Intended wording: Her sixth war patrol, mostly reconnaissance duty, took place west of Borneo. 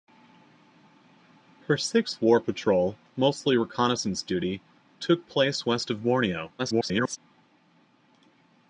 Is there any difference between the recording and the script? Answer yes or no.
yes